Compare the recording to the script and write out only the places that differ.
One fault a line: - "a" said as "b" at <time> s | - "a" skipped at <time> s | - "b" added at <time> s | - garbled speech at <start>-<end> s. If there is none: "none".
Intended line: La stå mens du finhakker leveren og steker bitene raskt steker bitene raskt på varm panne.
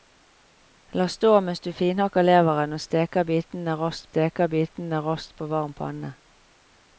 none